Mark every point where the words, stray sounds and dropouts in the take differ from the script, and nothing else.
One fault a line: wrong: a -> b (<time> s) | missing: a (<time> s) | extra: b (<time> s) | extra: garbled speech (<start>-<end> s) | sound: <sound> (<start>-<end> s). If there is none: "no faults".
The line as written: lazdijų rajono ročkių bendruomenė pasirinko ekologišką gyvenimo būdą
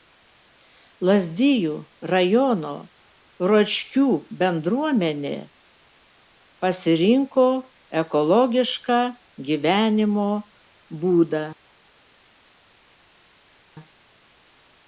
no faults